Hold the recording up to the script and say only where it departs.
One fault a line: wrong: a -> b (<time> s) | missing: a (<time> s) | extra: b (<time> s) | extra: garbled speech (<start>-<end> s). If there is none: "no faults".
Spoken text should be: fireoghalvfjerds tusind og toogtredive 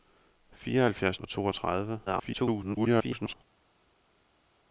missing: tusind (1.2 s)
extra: garbled speech (2.1-3.3 s)